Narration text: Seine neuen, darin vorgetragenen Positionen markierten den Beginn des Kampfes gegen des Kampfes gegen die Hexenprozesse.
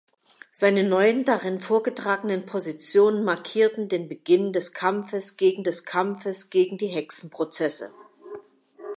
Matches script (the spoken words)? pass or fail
pass